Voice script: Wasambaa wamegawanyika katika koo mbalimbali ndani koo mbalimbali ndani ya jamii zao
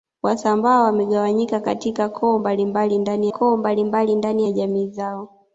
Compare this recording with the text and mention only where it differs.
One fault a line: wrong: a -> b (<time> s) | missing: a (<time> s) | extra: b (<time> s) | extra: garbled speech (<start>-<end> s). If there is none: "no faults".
no faults